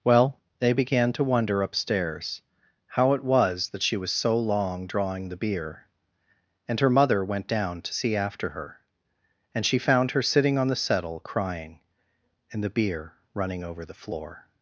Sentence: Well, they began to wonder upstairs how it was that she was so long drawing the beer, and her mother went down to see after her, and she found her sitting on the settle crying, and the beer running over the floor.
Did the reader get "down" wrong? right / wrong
right